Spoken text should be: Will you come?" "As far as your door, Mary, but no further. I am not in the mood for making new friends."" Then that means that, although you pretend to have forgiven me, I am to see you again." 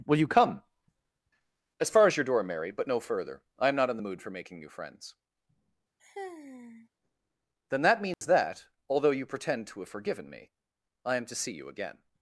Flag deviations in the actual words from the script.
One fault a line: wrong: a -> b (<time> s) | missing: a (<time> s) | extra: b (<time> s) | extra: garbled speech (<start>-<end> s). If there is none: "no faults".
no faults